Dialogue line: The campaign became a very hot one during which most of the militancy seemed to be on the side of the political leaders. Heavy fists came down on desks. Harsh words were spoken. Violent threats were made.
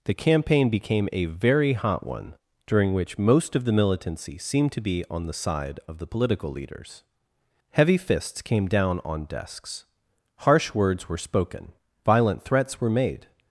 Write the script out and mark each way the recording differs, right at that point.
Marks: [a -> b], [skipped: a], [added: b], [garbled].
The campaign became a very hot one during which most of the militancy seemed to be on the side of the political leaders. Heavy fists came down on desks. Harsh words were spoken. Violent threats were made.